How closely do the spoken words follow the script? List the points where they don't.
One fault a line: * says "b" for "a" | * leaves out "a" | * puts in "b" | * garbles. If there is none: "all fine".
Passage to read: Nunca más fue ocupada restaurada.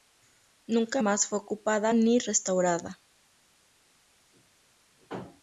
* puts in "ni"